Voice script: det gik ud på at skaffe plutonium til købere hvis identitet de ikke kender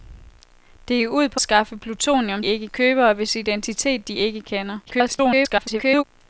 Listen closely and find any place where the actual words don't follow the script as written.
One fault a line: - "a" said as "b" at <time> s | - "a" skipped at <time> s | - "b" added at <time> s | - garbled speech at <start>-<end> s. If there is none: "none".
- "at" skipped at 1.4 s
- "til" said as "ikke" at 2.4 s
- garbled speech at 4.9-6.0 s